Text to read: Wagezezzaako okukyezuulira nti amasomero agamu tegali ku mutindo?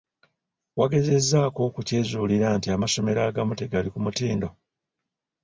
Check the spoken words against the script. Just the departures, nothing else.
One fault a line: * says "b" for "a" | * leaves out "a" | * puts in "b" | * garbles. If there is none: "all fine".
all fine